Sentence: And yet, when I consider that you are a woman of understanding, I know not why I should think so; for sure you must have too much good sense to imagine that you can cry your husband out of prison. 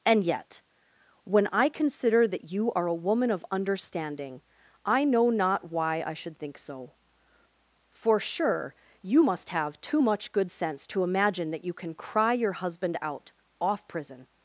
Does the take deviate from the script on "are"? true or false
false